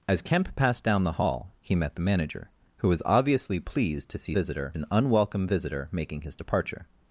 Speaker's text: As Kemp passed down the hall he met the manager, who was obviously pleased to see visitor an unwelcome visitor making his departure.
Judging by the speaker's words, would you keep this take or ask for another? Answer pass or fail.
pass